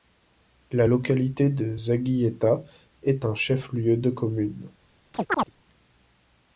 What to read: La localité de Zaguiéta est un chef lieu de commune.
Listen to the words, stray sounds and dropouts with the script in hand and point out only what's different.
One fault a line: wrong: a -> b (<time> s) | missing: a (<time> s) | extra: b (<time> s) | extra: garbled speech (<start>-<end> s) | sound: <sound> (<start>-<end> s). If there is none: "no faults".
sound: chirp (5.1-5.5 s)